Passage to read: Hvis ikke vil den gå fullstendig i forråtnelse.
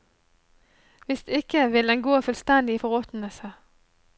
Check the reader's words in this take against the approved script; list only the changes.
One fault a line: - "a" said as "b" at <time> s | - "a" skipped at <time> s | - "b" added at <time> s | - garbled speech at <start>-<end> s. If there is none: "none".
none